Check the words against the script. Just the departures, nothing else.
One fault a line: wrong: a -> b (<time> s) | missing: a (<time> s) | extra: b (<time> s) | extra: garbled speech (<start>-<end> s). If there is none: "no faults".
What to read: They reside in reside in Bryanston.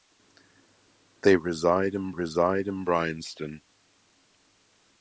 no faults